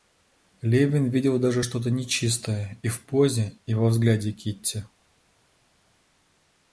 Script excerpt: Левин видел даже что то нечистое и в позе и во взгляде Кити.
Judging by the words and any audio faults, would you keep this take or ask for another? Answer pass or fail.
pass